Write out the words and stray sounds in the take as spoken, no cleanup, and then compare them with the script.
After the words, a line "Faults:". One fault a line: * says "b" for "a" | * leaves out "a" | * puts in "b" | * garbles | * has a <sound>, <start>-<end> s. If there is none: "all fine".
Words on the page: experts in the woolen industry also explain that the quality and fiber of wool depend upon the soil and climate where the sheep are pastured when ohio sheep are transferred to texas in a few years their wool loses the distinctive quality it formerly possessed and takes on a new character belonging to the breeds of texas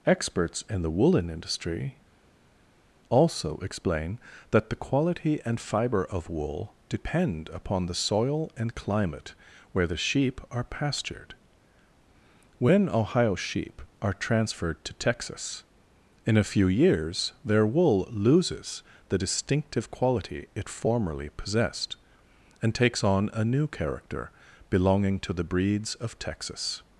experts in the woolen industry also explain that the quality and fiber of wool depend upon the soil and climate where the sheep are pastured when ohio sheep are transferred to texas in a few years their wool loses the distinctive quality it formerly possessed and takes on a new character belonging to the breeds of texas
Faults:
all fine